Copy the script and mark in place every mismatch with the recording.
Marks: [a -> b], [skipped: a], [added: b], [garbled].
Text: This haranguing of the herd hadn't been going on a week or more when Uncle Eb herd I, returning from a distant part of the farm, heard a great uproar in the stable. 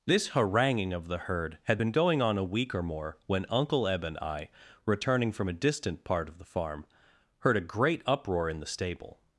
This haranguing of the herd [hadn't -> had] been going on a week or more when Uncle Eb [herd -> and] I, returning from a distant part of the farm, heard a great uproar in the stable.